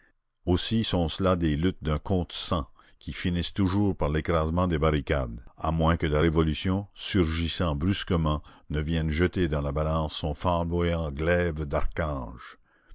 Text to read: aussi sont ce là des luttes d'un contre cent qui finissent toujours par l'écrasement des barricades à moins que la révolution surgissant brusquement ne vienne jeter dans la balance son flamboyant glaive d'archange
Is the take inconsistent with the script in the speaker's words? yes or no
no